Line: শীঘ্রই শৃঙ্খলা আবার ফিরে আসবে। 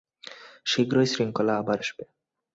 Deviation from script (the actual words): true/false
true